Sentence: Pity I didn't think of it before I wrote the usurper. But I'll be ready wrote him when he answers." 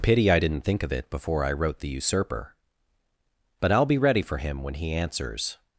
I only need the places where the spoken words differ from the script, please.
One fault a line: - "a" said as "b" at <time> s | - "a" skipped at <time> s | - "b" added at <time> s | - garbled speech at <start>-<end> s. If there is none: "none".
- "wrote" said as "for" at 4.2 s